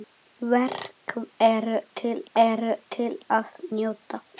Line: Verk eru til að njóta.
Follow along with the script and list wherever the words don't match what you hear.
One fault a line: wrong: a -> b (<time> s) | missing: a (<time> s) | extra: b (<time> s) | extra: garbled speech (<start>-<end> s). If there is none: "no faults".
extra: eru til (2.4 s)